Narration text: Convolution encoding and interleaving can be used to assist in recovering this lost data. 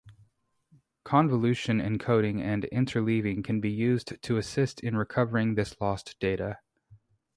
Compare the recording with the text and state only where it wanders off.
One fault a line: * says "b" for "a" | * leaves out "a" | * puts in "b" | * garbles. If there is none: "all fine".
all fine